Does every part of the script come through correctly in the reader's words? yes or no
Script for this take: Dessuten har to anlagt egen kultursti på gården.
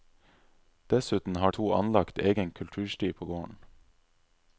yes